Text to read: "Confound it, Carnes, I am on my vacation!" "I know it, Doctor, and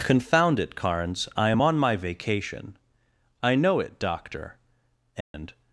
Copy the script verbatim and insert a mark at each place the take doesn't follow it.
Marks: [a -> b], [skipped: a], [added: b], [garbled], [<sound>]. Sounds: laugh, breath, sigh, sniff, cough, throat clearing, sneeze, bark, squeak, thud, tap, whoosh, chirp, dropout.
"Confound it, Carnes, I am on my vacation!" "I know it, Doctor, and [dropout]